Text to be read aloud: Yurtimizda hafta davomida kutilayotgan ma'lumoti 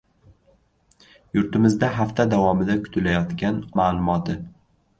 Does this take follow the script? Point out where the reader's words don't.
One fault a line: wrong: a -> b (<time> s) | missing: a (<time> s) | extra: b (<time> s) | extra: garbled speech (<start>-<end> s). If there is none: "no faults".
no faults